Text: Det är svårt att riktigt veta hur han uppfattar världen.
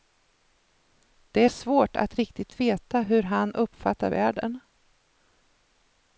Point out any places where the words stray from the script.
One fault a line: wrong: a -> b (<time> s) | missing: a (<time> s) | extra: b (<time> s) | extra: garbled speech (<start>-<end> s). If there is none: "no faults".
no faults